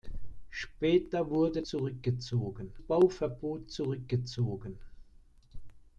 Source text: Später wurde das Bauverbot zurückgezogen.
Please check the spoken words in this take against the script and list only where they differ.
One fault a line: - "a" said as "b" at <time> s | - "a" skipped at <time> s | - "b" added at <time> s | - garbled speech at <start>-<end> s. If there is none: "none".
- "das" said as "zurückgezogen" at 1.7 s